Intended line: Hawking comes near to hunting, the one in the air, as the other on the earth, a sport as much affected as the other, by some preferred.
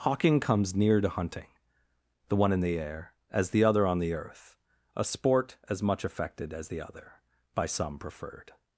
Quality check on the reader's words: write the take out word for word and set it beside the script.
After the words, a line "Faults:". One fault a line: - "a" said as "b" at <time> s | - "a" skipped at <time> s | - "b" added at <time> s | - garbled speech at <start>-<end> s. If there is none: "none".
Hawking comes near to hunting, the one in the air, as the other on the earth, a sport as much affected as the other, by some preferred.
Faults:
none